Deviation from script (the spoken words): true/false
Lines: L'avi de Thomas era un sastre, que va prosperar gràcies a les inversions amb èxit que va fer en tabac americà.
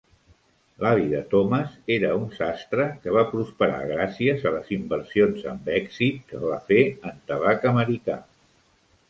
false